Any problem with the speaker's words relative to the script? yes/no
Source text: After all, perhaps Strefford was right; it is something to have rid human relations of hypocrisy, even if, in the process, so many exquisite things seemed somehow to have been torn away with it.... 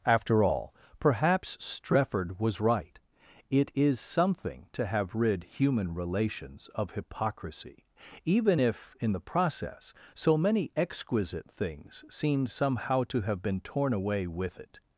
no